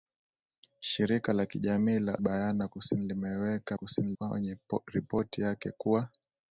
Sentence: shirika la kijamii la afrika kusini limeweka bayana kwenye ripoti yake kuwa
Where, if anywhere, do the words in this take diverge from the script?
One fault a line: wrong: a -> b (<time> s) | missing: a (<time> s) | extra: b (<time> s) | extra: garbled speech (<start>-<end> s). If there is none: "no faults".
wrong: afrika -> bayana (2.2 s)
wrong: bayana -> kusini (3.7 s)